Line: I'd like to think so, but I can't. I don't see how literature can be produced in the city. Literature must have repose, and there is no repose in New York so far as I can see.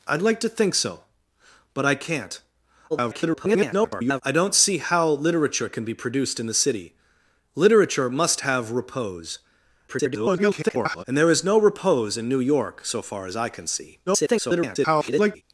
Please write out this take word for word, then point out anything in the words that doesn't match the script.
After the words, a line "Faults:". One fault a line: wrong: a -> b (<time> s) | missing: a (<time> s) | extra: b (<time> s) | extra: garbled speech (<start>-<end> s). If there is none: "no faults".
I'd like to think so, but I can't. [garbled] I don't see how literature can be produced in the city. Literature must have repose, [garbled] and there is no repose in New York so far as I can see. [garbled]
Faults:
extra: garbled speech (2.9-4.2 s)
extra: garbled speech (9.9-11.0 s)
extra: garbled speech (14.1-15.4 s)